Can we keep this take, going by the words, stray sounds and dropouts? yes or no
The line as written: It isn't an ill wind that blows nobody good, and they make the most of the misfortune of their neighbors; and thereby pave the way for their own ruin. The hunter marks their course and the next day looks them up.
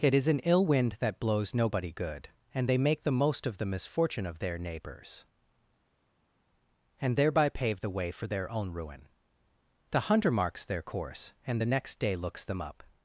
no